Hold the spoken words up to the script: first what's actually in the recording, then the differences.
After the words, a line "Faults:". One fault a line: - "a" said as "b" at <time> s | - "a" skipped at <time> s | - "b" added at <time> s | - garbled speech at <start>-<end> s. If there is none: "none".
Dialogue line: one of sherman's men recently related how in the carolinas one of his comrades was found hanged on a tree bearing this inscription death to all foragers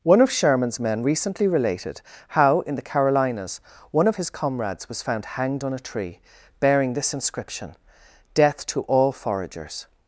one of sherman's men recently related how in the carolinas one of his comrades was found hanged on a tree bearing this inscription death to all foragers
Faults:
none